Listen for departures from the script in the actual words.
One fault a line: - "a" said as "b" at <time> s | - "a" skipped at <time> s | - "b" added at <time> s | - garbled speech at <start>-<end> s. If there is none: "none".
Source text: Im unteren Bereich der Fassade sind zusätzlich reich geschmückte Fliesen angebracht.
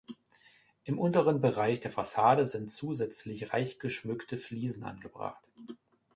none